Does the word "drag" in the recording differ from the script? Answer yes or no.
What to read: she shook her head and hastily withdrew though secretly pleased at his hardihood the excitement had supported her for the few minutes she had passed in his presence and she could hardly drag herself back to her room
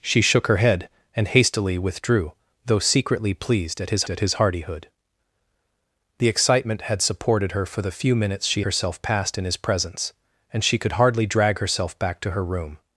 no